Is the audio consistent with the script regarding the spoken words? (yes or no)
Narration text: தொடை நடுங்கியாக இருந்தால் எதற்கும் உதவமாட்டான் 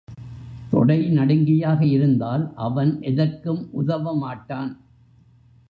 no